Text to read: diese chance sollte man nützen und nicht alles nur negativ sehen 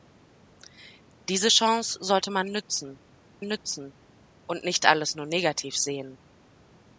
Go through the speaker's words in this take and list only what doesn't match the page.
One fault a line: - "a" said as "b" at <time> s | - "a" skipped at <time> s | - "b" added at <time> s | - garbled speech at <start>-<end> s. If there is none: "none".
- "nützen" added at 3.4 s